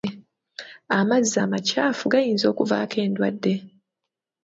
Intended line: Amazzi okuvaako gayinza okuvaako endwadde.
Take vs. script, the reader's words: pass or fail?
fail